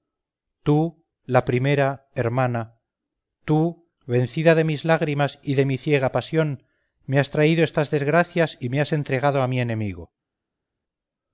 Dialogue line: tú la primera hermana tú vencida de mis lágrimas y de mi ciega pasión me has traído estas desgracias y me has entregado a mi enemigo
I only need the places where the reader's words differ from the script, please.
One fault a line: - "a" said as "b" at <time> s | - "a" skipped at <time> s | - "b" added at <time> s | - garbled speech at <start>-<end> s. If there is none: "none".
none